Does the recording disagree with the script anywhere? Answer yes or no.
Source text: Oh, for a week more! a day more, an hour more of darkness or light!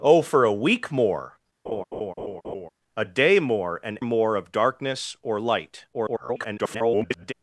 yes